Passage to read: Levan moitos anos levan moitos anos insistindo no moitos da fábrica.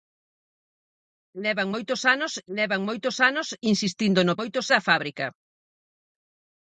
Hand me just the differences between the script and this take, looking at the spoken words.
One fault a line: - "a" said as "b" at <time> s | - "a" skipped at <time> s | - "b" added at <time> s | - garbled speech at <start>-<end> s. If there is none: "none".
none